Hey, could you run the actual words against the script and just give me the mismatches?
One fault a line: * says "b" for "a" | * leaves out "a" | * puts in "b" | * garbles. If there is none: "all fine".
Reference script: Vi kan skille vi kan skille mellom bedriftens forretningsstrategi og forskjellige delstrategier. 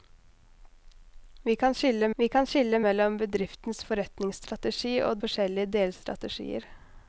all fine